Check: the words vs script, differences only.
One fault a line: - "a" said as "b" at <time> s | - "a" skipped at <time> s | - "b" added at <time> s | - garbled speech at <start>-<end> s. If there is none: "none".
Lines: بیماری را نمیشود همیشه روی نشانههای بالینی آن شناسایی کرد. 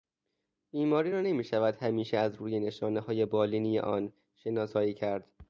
- "از" added at 2.2 s